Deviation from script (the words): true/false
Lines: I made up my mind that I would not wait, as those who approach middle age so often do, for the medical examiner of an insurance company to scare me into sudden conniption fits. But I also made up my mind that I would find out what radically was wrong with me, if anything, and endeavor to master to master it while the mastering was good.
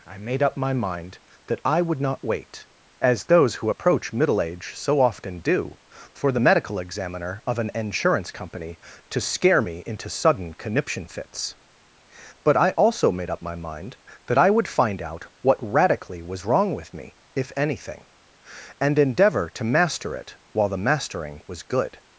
true